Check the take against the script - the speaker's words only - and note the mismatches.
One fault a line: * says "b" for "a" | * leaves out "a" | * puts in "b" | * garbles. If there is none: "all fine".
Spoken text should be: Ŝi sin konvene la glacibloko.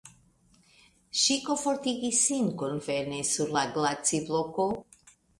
* puts in "komfortigis"
* puts in "sur"